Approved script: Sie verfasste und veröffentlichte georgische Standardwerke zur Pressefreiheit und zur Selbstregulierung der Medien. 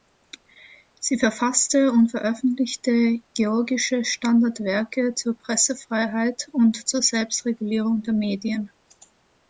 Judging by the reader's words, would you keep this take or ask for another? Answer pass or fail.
pass